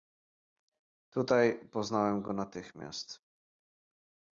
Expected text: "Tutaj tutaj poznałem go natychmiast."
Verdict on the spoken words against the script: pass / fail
fail